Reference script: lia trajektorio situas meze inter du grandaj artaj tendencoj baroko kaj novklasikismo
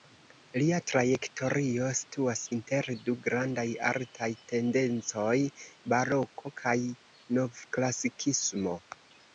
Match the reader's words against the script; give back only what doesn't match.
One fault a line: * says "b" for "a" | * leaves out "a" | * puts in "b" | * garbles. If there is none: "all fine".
* leaves out "meze"